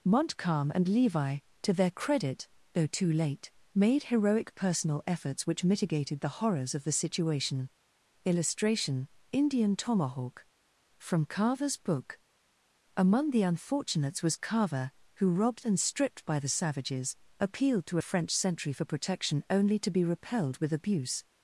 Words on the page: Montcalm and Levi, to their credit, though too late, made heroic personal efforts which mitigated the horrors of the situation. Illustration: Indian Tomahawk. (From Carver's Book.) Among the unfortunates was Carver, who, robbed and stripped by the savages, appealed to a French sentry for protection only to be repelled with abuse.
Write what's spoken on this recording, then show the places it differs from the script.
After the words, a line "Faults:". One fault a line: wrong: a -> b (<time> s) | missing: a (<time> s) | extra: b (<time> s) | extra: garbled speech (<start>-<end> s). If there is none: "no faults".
Montcalm and Levi, to their credit, though too late, made heroic personal efforts which mitigated the horrors of the situation. Illustration: Indian Tomahawk. (From Carver's Book.) Among the unfortunates was Carver, who, robbed and stripped by the savages, appealed to a French sentry for protection only to be repelled with abuse.
Faults:
no faults